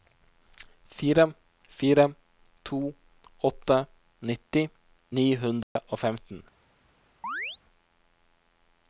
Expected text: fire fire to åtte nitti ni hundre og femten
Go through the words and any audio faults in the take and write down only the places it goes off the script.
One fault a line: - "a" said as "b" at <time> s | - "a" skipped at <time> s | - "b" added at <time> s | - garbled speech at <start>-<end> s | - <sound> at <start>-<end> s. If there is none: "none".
- dropout at 5.6-5.8 s
- chirp at 7.2-7.6 s